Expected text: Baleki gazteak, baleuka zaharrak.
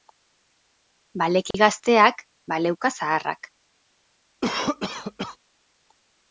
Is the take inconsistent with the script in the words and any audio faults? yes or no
yes